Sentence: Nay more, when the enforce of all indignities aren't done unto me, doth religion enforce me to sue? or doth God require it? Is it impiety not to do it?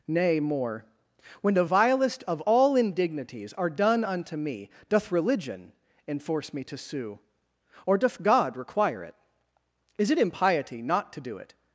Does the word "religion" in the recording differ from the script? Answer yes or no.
no